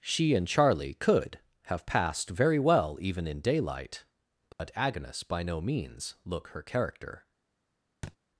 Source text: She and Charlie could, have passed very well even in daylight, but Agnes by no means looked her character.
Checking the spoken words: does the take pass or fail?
fail